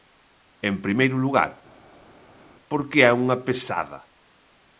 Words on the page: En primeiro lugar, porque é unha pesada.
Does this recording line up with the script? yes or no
yes